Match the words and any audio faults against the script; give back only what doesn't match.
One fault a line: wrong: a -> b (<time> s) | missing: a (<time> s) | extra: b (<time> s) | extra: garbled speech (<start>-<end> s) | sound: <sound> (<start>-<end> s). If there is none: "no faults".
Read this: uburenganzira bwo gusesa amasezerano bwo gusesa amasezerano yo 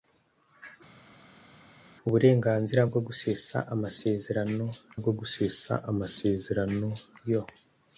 no faults